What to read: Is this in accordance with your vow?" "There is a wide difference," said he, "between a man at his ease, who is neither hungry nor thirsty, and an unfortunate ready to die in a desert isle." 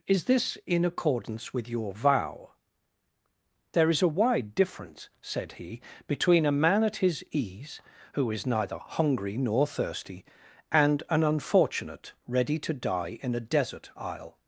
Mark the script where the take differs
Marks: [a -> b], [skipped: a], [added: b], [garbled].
Is this in accordance with your vow?" "There is a wide difference," said he, "between a man at his ease, who is neither hungry nor thirsty, and an unfortunate ready to die in a desert isle."